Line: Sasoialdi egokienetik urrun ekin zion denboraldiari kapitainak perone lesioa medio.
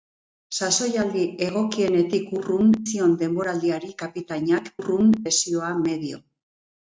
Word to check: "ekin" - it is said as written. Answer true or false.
false